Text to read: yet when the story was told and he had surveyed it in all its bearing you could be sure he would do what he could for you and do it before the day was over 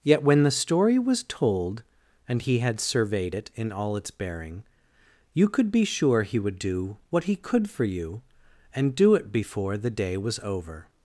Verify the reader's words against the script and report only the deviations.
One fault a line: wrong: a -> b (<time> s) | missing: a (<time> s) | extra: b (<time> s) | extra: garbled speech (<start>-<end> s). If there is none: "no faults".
no faults